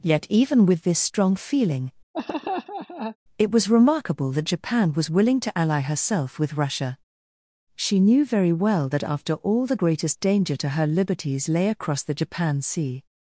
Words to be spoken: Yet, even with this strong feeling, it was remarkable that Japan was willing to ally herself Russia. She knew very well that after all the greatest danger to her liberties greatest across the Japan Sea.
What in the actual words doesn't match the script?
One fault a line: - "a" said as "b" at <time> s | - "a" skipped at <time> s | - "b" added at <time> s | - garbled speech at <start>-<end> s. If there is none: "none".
- "with" added at 6.4 s
- "greatest" said as "lay" at 11.5 s